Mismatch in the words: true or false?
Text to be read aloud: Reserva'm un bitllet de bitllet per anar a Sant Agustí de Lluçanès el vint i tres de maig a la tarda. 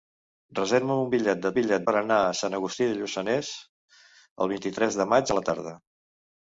false